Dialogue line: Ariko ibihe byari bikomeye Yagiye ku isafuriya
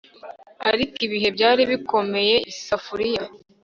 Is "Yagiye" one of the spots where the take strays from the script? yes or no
yes